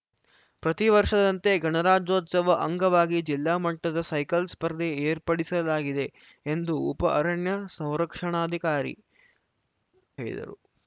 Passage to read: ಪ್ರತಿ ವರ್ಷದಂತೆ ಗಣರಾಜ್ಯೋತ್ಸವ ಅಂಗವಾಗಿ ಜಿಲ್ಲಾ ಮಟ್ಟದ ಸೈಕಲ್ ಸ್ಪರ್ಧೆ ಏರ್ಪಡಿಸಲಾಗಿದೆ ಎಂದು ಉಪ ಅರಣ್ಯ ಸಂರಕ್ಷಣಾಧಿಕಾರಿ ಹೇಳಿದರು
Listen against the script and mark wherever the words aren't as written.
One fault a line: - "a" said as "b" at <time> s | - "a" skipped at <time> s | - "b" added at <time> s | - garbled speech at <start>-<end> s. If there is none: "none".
none